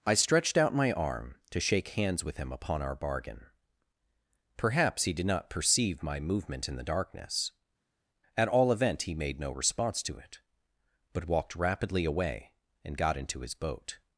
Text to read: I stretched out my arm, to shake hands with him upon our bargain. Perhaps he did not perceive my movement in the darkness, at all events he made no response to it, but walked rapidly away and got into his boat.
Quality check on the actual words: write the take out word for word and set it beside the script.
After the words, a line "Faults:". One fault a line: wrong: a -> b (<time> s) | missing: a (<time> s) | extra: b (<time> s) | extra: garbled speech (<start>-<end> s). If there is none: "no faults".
I stretched out my arm, to shake hands with him upon our bargain. Perhaps he did not perceive my movement in the darkness, at all event he made no response to it, but walked rapidly away and got into his boat.
Faults:
wrong: events -> event (8.7 s)